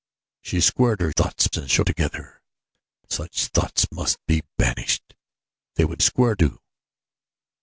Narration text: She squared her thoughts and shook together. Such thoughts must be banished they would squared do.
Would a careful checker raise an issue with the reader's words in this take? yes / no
no